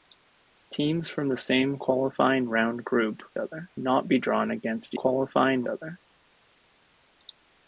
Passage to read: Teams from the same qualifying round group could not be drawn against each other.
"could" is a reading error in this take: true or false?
true